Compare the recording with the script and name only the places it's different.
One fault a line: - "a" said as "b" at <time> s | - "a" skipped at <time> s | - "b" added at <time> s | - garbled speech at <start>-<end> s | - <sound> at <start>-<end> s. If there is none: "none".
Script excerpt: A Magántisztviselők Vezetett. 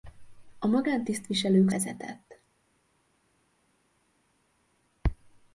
none